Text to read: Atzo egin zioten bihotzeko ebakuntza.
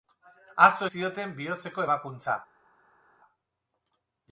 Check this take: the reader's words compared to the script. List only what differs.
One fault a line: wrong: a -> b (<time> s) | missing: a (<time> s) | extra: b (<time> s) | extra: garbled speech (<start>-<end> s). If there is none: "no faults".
missing: egin (0.9 s)